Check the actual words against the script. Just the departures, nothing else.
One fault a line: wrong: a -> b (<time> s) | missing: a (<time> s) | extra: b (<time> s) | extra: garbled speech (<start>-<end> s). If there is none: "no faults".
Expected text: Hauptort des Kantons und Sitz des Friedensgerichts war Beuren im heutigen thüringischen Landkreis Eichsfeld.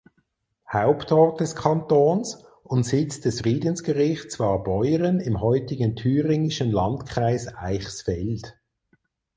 no faults